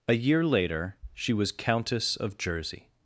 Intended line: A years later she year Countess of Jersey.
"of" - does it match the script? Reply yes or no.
yes